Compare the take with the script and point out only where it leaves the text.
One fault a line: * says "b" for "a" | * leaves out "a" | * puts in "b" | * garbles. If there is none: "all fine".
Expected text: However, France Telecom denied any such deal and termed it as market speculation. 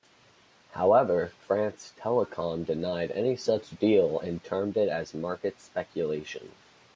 all fine